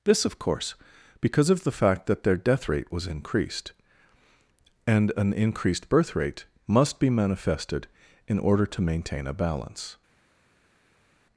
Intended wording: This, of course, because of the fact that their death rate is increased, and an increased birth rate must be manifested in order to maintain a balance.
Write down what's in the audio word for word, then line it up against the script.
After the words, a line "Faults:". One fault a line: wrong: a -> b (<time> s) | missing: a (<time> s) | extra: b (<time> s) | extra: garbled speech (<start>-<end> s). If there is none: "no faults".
This, of course, because of the fact that their death rate was increased, and an increased birth rate must be manifested in order to maintain a balance.
Faults:
wrong: is -> was (2.9 s)